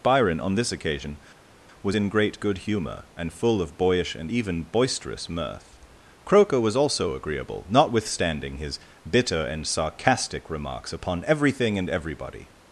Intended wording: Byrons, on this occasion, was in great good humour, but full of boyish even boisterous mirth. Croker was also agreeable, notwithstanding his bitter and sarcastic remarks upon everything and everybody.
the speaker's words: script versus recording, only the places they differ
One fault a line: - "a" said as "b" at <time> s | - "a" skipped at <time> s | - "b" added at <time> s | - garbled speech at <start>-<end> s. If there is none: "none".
- "Byrons" said as "Byron" at 0.0 s
- "but" said as "and" at 3.2 s
- "and" added at 4.1 s